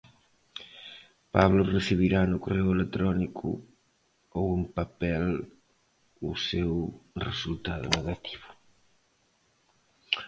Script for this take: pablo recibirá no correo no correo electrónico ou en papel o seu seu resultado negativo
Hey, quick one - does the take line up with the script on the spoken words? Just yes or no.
no